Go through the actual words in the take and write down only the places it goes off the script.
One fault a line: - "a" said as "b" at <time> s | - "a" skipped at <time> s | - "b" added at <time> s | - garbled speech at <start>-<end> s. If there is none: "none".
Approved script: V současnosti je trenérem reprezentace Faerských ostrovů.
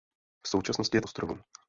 - "trenérem reprezentace Faerských" skipped at 1.0 s